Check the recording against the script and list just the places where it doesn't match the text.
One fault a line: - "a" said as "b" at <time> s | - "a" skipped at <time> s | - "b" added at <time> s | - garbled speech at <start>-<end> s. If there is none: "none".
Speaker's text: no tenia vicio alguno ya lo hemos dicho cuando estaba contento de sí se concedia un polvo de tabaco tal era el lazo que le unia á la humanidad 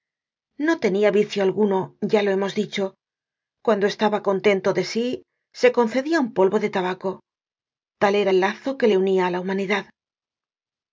none